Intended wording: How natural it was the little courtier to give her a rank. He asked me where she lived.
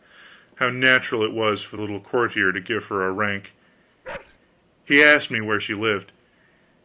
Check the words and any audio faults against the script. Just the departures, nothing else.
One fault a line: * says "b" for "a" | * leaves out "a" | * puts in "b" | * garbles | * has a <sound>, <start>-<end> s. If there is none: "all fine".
* puts in "for"
* has a bark, 4.0-4.4 s